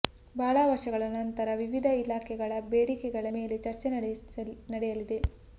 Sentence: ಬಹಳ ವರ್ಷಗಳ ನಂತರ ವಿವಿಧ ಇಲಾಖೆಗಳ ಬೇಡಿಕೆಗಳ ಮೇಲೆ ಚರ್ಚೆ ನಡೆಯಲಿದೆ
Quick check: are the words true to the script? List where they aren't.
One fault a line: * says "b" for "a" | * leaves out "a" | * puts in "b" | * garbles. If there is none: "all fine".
all fine